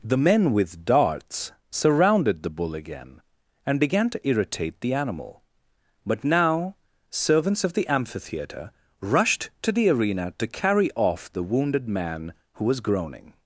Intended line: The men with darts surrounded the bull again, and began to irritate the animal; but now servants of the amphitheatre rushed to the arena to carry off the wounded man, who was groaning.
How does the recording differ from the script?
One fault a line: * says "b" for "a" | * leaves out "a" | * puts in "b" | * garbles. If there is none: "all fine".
all fine